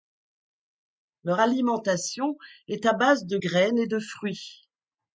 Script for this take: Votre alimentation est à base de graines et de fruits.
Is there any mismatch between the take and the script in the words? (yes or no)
yes